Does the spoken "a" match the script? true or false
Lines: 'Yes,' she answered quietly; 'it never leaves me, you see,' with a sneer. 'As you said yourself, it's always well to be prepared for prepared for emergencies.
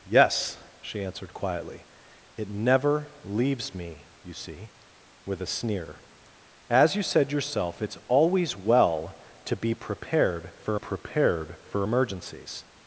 true